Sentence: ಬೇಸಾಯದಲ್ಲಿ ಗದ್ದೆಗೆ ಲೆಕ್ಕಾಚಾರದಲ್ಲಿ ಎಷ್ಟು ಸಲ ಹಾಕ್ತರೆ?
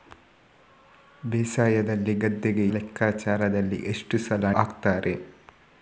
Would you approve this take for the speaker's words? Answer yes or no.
yes